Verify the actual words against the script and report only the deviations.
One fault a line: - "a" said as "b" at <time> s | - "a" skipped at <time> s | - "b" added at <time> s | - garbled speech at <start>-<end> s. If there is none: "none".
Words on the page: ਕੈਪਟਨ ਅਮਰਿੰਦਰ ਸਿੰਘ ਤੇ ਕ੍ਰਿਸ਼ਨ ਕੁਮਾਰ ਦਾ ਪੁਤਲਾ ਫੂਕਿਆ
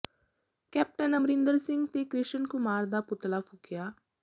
none